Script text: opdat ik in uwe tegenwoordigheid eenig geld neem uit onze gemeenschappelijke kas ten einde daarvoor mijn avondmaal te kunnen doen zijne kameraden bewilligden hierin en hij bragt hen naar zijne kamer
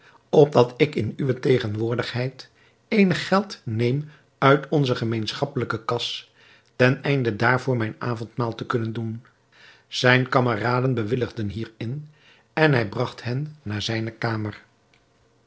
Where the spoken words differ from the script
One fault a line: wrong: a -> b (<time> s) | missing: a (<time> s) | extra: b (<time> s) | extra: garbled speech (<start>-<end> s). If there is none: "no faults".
no faults